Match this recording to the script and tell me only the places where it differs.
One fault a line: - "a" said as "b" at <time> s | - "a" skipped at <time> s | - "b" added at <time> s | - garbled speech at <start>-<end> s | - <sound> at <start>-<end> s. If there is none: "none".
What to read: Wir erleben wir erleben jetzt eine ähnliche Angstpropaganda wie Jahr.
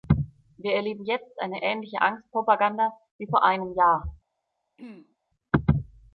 - "wir erleben" skipped at 1.1 s
- "vor einem" added at 3.2 s
- throat clearing at 4.8-5.2 s